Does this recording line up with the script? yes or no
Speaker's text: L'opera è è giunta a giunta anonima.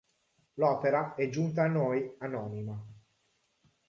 no